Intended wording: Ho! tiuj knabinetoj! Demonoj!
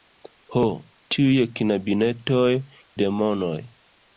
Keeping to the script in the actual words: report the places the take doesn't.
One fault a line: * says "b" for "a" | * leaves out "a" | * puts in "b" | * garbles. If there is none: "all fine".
all fine